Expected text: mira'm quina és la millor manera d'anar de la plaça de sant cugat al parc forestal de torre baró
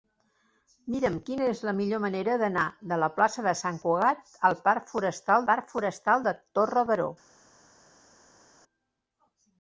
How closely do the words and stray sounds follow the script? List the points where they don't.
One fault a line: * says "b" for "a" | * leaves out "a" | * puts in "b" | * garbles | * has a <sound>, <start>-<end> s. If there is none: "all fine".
* puts in "parc forestal"